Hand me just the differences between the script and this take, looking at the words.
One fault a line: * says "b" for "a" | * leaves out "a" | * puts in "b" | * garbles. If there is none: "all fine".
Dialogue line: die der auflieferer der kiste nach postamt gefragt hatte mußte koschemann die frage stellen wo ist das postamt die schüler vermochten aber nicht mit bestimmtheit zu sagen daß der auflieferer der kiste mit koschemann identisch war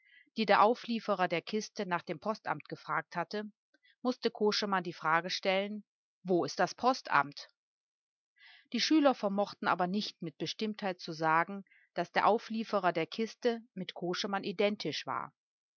* puts in "dem"